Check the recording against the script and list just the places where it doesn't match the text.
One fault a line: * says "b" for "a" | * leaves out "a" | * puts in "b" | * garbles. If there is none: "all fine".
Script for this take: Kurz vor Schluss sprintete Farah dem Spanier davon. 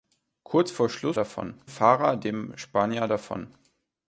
* says "davon" for "sprintete"